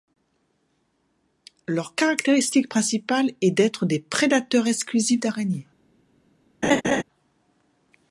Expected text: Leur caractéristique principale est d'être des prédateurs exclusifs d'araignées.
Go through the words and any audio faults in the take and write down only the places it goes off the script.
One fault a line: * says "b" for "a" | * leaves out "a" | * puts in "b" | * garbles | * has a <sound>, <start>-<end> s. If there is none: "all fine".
* has a laugh, 6.6-7.0 s